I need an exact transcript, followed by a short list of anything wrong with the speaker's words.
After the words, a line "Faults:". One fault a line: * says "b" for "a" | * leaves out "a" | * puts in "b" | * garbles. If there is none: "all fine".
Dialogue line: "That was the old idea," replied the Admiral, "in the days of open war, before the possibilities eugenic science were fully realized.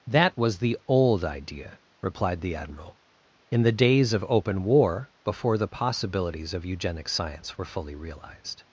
"That was the old idea," replied the Admiral, "in the days of open war, before the possibilities of eugenic science were fully realized.
Faults:
* puts in "of"